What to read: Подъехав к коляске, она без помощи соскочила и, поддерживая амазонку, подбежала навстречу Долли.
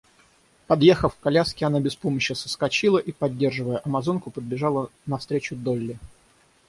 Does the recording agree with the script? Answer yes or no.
yes